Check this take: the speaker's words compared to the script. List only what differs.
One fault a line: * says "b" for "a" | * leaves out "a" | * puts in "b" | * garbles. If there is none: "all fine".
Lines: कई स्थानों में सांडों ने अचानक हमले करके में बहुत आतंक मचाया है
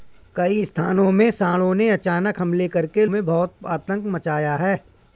all fine